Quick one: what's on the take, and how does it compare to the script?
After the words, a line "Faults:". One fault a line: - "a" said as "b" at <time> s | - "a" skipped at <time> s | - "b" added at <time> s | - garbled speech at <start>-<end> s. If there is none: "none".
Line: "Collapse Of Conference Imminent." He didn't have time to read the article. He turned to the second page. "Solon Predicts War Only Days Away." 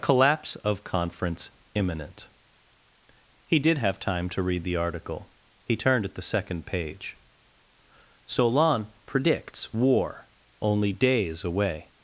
"Collapse Of Conference Imminent." He did have time to read the article. He turned at the second page. "Solon Predicts War Only Days Away."
Faults:
- "didn't" said as "did" at 3.6 s
- "to" said as "at" at 6.1 s